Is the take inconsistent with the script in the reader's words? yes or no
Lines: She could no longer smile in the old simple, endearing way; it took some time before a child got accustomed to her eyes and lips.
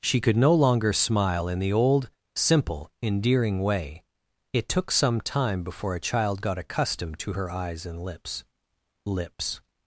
yes